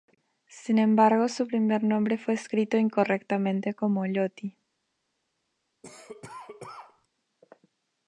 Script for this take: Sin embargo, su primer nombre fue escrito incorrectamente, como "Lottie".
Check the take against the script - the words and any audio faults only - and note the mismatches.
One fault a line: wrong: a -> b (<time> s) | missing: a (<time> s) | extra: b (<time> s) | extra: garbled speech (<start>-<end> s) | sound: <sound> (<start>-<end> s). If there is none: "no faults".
sound: cough (5.8-7.1 s)